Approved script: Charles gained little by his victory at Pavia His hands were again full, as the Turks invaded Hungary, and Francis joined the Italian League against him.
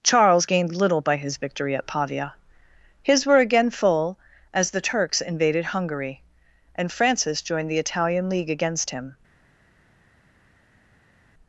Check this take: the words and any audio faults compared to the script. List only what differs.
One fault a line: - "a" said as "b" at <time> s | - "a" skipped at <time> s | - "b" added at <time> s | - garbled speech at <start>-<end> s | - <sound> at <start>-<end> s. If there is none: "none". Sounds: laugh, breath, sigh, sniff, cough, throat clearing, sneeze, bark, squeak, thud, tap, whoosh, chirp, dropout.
- "hands" skipped at 3.3 s